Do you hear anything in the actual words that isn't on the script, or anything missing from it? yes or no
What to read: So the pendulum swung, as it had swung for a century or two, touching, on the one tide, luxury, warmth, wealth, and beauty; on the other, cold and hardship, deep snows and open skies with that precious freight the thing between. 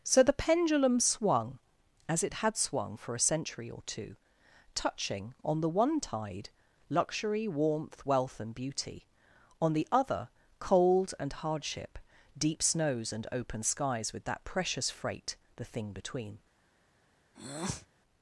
no